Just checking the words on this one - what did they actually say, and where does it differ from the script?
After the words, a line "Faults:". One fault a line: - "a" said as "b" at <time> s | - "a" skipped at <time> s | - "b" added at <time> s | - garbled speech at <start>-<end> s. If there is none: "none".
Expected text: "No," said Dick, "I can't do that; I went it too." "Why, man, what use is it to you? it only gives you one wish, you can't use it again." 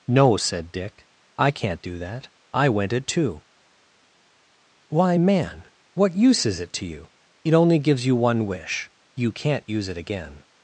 "No," said Dick, "I can't do that; I went it too." "Why, man, what use is it to you? it only gives you one wish, you can't use it again."
Faults:
none